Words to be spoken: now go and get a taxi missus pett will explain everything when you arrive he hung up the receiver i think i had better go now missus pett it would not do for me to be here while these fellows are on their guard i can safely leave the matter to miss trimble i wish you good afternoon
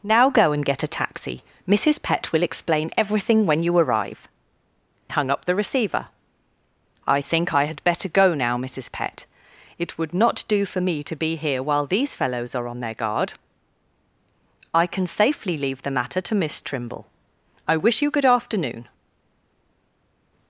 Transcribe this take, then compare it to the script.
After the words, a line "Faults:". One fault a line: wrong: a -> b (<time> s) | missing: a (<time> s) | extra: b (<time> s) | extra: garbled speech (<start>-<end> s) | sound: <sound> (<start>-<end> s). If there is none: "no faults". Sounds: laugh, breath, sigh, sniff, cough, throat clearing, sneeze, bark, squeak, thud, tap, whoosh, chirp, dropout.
now go and get a taxi missus pett will explain everything when you arrive hung up the receiver i think i had better go now missus pett it would not do for me to be here while these fellows are on their guard i can safely leave the matter to miss trimble i wish you good afternoon
Faults:
missing: he (4.3 s)